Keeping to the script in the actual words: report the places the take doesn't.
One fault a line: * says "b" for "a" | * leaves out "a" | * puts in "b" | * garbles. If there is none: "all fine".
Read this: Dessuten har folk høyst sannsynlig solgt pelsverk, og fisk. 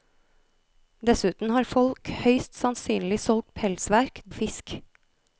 all fine